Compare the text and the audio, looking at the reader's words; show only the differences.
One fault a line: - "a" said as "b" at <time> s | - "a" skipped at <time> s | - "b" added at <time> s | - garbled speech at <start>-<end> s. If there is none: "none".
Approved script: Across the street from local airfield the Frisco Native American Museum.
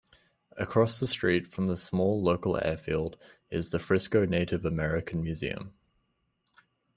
- "the small" added at 1.7 s
- "is" added at 3.5 s